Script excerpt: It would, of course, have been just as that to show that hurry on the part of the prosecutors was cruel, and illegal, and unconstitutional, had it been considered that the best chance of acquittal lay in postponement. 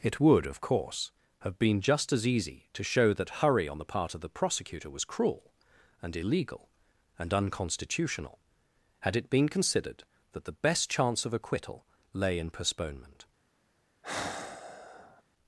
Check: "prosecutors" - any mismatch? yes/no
yes